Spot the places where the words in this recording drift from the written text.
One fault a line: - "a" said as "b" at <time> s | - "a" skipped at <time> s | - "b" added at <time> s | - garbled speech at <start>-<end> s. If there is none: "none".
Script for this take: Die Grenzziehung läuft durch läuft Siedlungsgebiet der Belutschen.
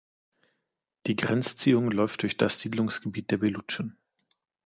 - "läuft" said as "das" at 2.4 s